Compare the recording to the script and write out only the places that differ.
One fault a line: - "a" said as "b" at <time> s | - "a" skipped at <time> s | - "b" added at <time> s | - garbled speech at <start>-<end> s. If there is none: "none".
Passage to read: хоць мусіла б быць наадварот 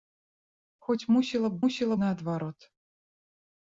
- "быць" said as "мусіла" at 1.6 s